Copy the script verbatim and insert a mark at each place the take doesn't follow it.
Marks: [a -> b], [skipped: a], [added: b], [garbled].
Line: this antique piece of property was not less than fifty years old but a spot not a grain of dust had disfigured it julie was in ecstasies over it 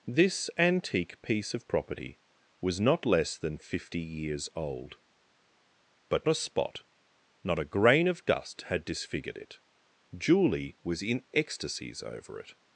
this antique piece of property was not less than fifty years old but a spot not a grain of dust had disfigured it julie was in ecstasies over it